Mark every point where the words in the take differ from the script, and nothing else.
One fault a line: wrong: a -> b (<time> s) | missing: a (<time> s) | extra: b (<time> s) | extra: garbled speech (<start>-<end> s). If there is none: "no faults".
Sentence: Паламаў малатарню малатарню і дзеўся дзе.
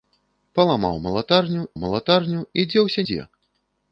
no faults